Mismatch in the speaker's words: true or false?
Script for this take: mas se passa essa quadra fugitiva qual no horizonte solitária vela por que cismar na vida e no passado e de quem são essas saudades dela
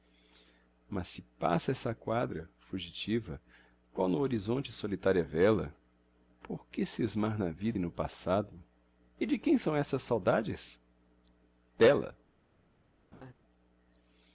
false